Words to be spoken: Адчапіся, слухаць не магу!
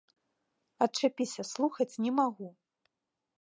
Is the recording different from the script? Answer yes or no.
no